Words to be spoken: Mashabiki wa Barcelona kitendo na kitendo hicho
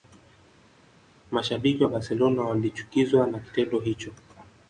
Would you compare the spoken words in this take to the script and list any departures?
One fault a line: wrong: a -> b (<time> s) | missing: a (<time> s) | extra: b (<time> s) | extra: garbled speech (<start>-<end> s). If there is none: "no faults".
wrong: kitendo -> walichukizwa (2.4 s)